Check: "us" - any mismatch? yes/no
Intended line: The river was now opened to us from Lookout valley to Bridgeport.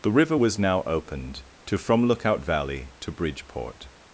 yes